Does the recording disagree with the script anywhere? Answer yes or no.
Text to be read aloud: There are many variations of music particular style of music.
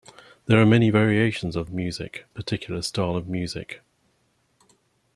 no